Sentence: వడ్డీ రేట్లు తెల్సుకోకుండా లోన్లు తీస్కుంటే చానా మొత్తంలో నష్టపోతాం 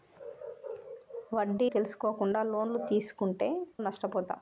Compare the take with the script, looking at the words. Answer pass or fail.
fail